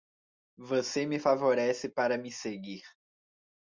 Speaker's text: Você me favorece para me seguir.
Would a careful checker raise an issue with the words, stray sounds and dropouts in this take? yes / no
no